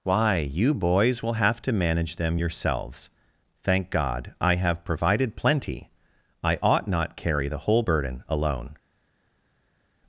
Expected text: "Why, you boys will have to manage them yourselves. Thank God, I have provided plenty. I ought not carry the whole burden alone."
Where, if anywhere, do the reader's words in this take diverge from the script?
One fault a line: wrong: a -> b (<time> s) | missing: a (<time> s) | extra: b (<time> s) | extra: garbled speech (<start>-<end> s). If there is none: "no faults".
no faults